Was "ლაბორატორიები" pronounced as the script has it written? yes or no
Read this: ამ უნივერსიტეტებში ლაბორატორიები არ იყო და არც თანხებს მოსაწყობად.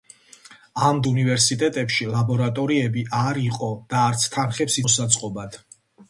yes